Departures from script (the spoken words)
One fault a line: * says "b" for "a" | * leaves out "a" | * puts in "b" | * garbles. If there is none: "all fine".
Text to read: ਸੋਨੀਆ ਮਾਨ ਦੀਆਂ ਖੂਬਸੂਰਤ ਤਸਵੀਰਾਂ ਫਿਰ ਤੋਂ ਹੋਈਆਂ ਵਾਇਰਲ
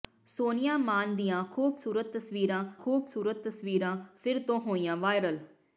* puts in "ਖੂਬਸੂਰਤ ਤਸਵੀਰਾਂ"